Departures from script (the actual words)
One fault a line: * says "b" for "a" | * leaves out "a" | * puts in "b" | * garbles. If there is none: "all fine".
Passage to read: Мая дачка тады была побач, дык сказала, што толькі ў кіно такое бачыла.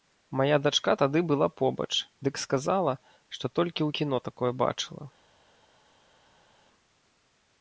all fine